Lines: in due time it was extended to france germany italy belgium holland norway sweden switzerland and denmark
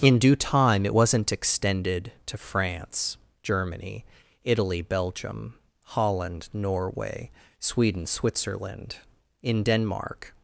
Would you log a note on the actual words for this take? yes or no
yes